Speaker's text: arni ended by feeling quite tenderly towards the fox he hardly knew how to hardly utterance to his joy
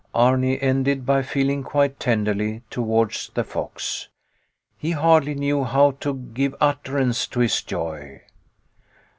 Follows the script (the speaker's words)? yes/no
no